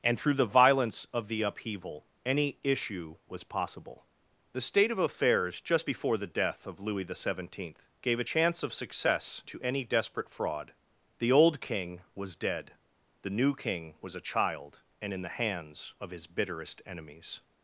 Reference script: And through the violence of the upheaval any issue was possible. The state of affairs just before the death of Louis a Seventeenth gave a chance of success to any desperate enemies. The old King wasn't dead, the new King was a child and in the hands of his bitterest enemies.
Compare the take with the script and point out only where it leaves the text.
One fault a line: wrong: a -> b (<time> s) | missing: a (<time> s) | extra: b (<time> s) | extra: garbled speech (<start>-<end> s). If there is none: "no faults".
wrong: a -> the (7.0 s)
wrong: enemies -> fraud (10.3 s)
wrong: wasn't -> was (12.1 s)